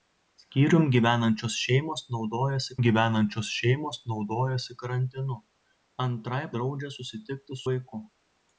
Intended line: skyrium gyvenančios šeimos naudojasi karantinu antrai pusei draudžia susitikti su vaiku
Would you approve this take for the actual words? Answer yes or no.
no